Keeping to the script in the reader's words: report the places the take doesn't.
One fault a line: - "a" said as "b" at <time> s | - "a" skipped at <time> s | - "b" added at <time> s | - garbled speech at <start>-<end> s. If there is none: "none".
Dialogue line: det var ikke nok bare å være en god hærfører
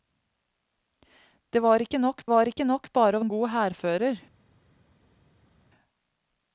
- "var ikke nok" added at 2.3 s
- "være" skipped at 3.2 s